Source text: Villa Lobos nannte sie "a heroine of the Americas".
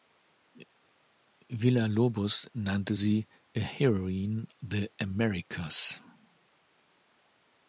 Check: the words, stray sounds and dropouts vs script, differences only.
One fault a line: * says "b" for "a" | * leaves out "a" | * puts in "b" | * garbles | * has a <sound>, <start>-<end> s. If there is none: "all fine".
* leaves out "of"